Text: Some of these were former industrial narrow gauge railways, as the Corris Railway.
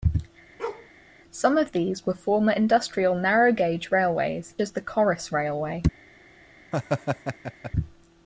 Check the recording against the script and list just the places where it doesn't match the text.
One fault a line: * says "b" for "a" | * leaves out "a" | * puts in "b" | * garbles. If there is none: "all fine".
all fine